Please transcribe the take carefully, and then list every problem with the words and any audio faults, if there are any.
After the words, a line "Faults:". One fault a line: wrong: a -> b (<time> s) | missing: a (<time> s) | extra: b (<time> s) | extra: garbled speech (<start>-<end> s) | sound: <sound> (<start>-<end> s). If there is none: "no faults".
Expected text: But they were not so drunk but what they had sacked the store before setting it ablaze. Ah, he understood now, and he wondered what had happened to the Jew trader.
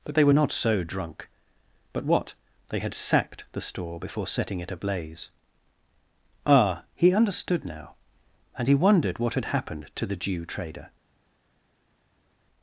But they were not so drunk but what they had sacked the store before setting it ablaze. Ah, he understood now, and he wondered what had happened to the Jew trader.
Faults:
no faults